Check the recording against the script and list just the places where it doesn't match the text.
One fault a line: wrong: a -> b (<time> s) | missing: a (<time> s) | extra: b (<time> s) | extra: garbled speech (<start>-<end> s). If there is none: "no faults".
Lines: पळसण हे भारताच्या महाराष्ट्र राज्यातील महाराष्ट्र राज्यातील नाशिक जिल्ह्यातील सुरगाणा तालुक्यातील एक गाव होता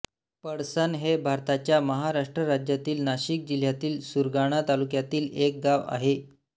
missing: महाराष्ट्र राज्यातील (3.0 s)
wrong: होता -> आहे (5.9 s)